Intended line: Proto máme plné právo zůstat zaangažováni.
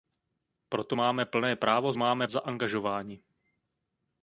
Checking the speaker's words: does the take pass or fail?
fail